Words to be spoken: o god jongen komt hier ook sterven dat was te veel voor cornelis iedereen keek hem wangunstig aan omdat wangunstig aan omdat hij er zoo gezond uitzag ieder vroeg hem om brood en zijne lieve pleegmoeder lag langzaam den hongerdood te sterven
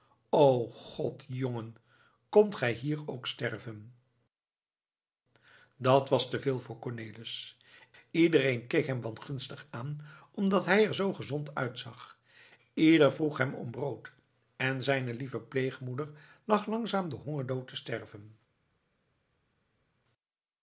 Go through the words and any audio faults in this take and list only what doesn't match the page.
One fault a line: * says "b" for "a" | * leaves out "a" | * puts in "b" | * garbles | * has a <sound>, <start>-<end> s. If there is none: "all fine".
* puts in "gij"
* leaves out "wangunstig aan omdat"